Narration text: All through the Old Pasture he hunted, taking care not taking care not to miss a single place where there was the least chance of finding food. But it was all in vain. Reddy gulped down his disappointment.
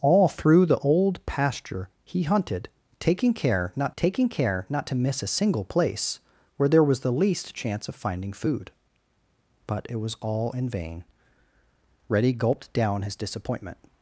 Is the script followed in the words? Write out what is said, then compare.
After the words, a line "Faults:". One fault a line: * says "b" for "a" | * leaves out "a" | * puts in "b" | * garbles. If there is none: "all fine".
All through the Old Pasture he hunted, taking care not taking care not to miss a single place where there was the least chance of finding food. But it was all in vain. Reddy gulped down his disappointment.
Faults:
all fine